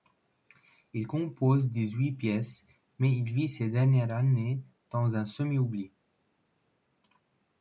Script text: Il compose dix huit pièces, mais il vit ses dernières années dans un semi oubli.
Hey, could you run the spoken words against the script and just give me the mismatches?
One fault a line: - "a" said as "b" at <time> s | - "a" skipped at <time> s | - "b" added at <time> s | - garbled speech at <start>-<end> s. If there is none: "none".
none